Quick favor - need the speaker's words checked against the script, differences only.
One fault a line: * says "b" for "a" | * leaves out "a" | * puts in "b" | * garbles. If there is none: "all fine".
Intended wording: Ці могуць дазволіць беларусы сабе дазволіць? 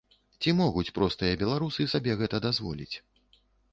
* says "простыя" for "дазволіць"
* puts in "гэта"